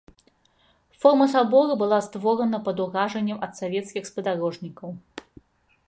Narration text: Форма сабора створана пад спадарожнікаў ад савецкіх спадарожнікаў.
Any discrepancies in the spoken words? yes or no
yes